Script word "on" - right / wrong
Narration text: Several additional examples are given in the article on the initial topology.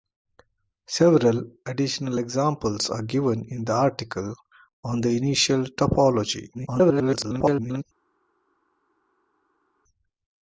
right